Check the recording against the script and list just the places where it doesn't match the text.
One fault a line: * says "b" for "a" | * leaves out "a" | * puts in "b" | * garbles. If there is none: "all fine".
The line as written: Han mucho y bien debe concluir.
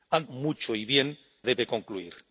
all fine